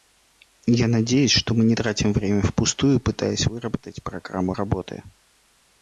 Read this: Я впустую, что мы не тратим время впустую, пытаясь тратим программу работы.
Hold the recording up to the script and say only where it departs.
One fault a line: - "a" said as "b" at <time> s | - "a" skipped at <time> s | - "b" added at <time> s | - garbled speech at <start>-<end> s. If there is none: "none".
- "впустую" said as "надеюсь" at 0.9 s
- "тратим" said as "выработать" at 3.5 s